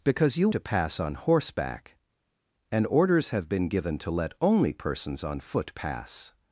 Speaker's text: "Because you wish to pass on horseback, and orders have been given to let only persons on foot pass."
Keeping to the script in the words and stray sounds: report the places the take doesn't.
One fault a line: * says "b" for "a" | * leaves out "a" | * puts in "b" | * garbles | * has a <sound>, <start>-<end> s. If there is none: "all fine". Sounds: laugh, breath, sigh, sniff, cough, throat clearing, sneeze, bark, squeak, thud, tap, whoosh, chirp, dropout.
* leaves out "wish"